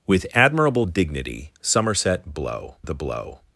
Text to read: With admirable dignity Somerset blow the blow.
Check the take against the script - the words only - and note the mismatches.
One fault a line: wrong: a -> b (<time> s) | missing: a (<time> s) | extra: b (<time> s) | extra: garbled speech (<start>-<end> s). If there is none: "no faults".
no faults